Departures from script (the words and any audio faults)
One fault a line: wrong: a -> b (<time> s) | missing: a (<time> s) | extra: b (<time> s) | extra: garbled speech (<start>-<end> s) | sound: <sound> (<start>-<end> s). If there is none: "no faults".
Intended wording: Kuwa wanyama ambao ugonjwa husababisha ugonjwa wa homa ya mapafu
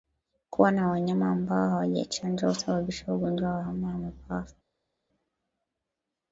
extra: na (0.7 s)
wrong: ugonjwa -> hawajachanjwa (1.7 s)